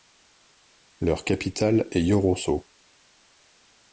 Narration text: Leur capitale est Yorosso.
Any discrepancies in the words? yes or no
no